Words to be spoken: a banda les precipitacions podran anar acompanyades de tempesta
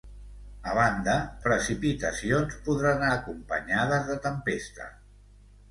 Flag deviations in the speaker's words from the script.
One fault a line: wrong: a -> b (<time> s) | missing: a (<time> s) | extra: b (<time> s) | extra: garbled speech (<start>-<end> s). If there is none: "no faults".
missing: les (1.1 s)
missing: anar (3.1 s)